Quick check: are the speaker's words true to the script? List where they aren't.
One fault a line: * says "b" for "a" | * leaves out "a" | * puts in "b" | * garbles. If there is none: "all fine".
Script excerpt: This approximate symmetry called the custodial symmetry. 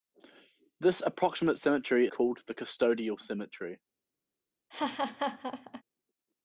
all fine